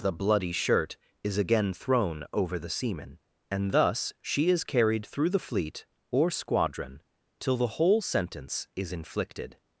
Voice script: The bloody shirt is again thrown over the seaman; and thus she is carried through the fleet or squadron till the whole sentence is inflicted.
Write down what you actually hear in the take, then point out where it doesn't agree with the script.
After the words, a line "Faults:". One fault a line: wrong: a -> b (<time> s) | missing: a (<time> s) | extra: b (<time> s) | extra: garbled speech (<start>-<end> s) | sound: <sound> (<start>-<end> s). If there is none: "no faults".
The bloody shirt is again thrown over the seaman; and thus she is carried through the fleet or squadron till the whole sentence is inflicted.
Faults:
no faults